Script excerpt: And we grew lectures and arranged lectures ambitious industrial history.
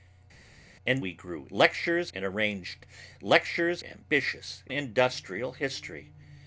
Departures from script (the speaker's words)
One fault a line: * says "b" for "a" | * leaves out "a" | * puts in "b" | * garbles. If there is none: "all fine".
all fine